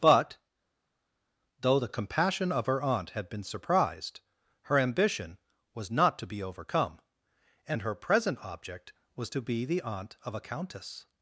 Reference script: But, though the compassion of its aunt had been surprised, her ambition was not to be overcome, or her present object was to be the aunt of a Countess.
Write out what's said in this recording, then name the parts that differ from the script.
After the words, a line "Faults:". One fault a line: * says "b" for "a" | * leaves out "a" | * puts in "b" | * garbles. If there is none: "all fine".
But, though the compassion of her aunt had been surprised, her ambition was not to be overcome, and her present object was to be the aunt of a Countess.
Faults:
* says "her" for "its"
* says "and" for "or"